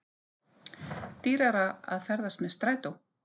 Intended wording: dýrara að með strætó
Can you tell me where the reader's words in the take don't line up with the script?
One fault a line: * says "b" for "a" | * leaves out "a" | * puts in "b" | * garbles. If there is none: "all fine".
* puts in "ferðast"